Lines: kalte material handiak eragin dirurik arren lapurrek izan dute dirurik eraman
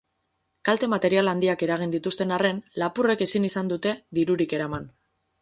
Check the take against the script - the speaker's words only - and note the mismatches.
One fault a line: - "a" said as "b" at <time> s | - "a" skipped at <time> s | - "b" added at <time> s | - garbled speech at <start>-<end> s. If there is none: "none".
- "dirurik" said as "dituzten" at 2.0 s
- "ezin" added at 3.3 s